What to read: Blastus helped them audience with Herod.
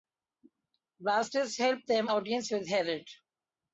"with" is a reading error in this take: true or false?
false